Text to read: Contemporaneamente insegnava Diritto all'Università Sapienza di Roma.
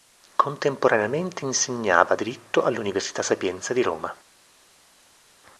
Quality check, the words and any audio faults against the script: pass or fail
pass